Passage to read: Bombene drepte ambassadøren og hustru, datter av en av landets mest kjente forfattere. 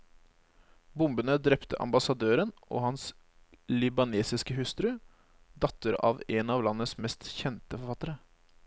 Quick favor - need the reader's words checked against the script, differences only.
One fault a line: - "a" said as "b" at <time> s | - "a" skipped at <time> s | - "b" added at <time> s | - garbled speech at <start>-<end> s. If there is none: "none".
- "hans libanesiske" added at 2.9 s